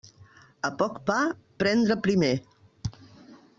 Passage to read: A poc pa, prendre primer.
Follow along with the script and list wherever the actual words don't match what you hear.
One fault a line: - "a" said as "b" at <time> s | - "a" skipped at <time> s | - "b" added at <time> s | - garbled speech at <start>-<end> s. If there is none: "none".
none